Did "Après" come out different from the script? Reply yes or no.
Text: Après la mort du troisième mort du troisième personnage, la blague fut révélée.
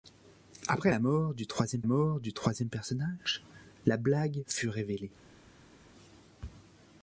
no